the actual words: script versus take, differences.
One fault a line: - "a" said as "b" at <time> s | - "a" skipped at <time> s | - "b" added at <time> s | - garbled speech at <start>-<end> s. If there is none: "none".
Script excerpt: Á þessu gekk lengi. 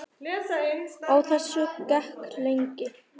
none